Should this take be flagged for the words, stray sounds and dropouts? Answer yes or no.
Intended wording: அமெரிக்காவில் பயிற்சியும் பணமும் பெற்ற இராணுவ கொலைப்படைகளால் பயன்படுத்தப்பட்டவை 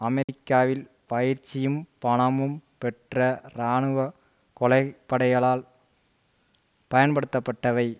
yes